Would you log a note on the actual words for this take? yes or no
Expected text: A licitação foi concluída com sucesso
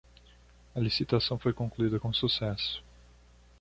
no